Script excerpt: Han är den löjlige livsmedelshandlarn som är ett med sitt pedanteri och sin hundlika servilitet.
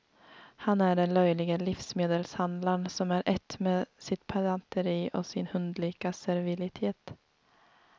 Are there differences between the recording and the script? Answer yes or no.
no